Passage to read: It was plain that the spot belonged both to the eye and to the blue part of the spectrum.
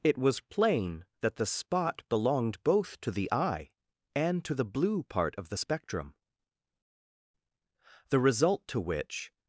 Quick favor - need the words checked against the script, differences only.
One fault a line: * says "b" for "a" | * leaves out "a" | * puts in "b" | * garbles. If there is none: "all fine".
* puts in "The result to which"